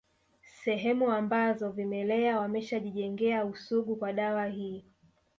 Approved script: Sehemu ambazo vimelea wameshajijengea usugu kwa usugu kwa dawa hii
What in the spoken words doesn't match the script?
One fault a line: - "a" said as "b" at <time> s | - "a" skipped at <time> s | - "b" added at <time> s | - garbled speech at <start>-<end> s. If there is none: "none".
- "usugu kwa" skipped at 4.1 s